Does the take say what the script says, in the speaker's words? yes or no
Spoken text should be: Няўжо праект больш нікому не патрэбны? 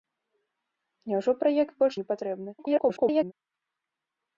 no